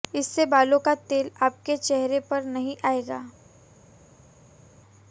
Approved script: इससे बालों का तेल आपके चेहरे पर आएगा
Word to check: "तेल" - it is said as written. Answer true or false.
true